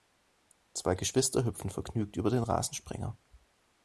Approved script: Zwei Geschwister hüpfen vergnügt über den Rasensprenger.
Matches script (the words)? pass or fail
pass